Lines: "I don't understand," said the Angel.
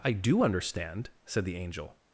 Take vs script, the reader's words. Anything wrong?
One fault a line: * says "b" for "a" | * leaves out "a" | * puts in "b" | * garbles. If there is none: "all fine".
* says "do" for "don't"